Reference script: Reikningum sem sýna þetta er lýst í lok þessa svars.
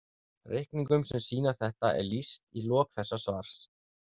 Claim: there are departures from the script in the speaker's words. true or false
false